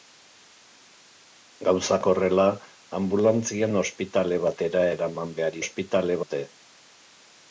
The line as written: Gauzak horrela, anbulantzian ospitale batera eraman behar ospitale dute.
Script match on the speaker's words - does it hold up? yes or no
yes